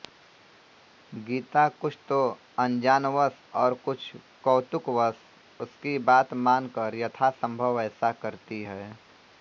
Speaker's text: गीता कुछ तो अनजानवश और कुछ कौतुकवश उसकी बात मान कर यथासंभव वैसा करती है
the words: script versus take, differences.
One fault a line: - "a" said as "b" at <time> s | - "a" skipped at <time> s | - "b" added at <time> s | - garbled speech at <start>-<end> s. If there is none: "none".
none